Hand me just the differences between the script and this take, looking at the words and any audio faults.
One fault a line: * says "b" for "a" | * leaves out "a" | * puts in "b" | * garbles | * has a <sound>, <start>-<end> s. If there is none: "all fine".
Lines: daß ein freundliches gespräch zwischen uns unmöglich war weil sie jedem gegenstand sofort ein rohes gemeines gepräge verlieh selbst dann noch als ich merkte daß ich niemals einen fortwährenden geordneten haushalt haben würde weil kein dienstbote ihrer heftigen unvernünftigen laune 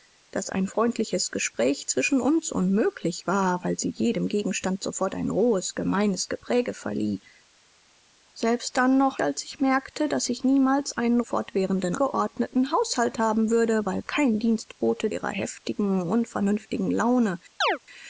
* has a chirp, 17.6-17.8 s